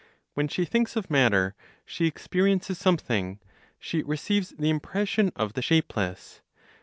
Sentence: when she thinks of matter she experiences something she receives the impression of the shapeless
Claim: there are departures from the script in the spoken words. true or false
false